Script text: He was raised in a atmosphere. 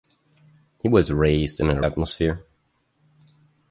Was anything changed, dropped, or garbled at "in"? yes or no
no